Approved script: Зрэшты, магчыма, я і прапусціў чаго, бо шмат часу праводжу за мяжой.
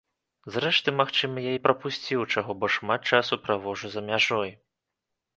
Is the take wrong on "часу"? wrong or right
right